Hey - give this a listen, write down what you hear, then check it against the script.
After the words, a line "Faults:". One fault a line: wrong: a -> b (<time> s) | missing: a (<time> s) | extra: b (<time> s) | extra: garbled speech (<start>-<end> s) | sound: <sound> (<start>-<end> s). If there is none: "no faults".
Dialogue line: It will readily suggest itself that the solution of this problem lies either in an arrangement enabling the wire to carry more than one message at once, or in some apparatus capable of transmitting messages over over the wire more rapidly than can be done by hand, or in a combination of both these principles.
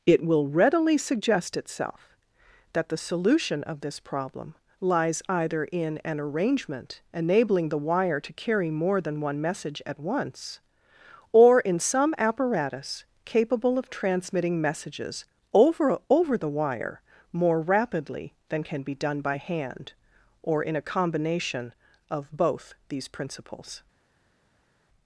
It will readily suggest itself that the solution of this problem lies either in an arrangement enabling the wire to carry more than one message at once, or in some apparatus capable of transmitting messages over over the wire more rapidly than can be done by hand, or in a combination of both these principles.
Faults:
no faults